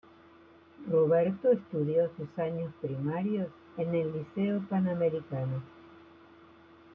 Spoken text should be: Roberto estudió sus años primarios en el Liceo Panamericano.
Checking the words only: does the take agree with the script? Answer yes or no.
yes